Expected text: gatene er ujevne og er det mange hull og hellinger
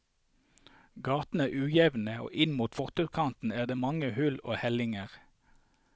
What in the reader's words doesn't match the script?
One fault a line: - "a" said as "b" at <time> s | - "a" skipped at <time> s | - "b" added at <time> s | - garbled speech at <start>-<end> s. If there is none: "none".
- "inn mot fortauskanten" added at 2.5 s